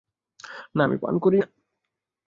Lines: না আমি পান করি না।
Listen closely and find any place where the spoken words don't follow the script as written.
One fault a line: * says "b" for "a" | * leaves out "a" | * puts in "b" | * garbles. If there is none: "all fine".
all fine